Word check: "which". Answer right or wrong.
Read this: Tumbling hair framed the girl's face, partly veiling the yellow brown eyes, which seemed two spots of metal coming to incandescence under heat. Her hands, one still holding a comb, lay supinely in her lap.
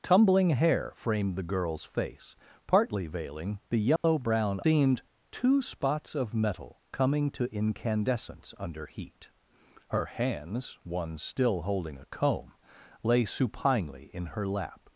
wrong